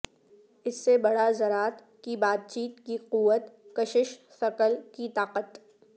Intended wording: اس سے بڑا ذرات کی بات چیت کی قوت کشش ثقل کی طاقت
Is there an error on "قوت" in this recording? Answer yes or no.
no